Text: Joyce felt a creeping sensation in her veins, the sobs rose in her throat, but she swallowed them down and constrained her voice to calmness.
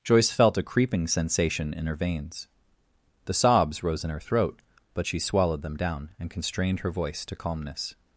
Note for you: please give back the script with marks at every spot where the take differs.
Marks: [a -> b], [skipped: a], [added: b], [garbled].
Joyce felt a creeping sensation in her veins, the sobs rose in her throat, but she swallowed them down and constrained her voice to calmness.